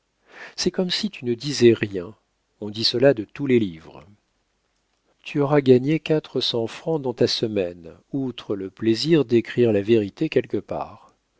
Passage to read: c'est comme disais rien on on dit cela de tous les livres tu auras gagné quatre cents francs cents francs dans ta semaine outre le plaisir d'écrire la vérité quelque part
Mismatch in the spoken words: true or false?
true